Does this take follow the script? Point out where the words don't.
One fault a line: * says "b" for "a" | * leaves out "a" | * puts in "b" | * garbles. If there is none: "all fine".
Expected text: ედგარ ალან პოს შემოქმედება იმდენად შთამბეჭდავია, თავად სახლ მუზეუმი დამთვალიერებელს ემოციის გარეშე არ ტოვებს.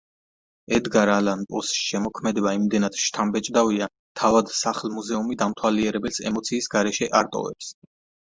all fine